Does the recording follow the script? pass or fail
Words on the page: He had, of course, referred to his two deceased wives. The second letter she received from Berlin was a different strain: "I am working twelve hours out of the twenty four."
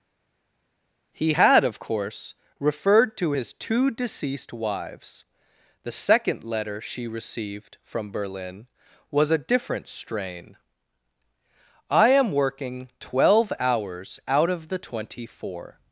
pass